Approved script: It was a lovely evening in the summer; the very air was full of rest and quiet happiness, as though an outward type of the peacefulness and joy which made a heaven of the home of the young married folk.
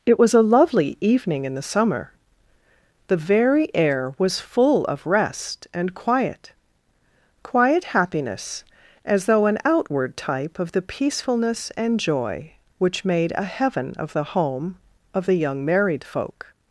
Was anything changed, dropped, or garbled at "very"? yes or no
no